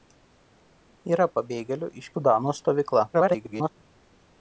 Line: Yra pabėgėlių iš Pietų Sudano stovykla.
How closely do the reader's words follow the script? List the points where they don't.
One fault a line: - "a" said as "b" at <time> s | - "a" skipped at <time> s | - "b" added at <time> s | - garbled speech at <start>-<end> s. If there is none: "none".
- "Pietų" skipped at 2.1 s
- garbled speech at 3.1-3.7 s